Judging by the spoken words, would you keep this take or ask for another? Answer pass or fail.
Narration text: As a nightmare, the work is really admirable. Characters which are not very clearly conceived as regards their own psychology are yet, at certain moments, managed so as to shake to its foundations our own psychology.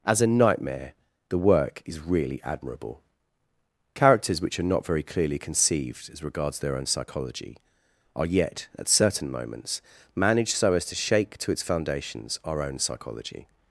pass